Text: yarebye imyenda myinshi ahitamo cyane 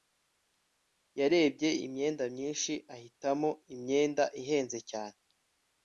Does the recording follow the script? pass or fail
fail